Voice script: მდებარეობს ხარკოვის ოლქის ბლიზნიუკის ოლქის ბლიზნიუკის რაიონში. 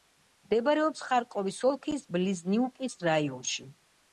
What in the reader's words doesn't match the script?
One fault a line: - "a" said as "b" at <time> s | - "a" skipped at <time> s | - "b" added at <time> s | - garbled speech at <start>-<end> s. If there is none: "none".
- "ოლქის ბლიზნიუკის" skipped at 3.0 s